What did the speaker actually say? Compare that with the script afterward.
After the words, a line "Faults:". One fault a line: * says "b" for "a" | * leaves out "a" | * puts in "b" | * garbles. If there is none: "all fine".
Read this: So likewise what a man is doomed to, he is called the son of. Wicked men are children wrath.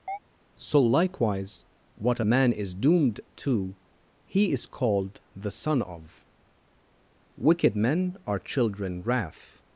So likewise what a man is doomed to, he is called the son of. Wicked men are children wrath.
Faults:
all fine